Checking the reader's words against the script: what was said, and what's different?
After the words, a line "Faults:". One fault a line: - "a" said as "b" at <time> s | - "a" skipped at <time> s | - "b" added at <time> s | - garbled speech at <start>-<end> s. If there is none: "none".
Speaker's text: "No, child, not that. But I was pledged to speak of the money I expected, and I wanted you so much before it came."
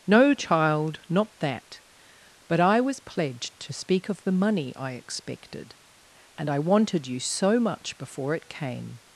"No, child, not that. But I was pledged to speak of the money I expected, and I wanted you so much before it came."
Faults:
none